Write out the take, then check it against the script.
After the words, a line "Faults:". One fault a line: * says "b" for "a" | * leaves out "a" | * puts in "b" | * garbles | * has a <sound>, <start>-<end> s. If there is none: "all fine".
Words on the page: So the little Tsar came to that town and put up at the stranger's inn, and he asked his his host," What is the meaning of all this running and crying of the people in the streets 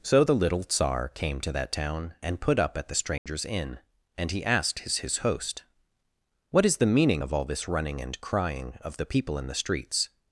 So the little Tsar came to that town and put up at the stranger's inn, and he asked his his host," What is the meaning of all this running and crying of the people in the streets
Faults:
* has a dropout, 3.2-3.3 s